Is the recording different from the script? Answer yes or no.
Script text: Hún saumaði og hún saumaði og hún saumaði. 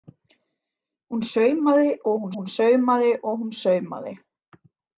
yes